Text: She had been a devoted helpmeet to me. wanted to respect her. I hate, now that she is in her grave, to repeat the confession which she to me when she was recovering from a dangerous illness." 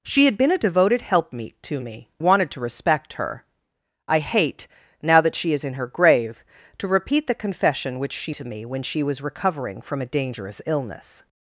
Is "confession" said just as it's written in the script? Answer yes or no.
yes